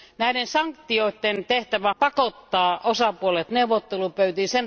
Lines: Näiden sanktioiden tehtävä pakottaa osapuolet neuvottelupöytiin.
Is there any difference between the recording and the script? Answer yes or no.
no